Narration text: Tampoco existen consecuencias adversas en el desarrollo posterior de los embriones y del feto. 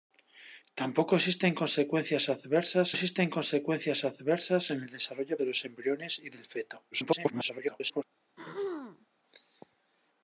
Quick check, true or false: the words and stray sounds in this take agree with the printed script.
false